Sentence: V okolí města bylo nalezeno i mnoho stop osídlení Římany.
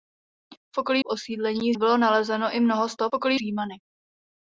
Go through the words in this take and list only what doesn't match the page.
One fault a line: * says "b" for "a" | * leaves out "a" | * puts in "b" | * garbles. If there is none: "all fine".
* says "osídlení" for "města"
* says "okolí" for "osídlení"